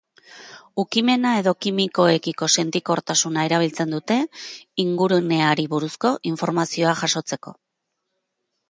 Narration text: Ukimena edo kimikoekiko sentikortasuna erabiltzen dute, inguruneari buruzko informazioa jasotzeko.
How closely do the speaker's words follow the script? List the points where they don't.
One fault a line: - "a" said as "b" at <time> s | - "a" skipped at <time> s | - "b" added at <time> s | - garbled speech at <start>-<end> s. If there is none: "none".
none